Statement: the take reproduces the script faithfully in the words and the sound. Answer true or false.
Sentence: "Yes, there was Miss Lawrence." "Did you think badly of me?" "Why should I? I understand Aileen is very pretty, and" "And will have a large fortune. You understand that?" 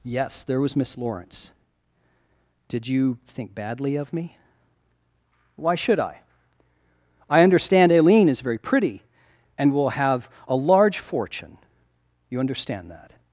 false